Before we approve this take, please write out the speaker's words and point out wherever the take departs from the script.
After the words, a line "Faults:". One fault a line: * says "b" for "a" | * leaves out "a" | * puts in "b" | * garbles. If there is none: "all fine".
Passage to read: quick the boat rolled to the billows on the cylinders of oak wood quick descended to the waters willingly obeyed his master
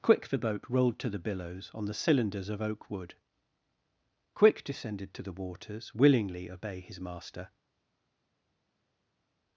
quick the boat rolled to the billows on the cylinders of oak wood quick descended to the waters willingly obey his master
Faults:
* says "obey" for "obeyed"